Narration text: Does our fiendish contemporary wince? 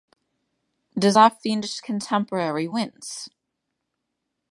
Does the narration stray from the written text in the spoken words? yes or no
no